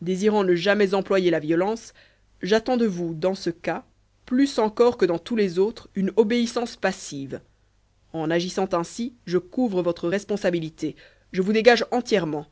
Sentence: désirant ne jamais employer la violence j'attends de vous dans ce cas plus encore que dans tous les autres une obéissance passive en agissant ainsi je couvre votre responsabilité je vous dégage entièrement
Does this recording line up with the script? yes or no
yes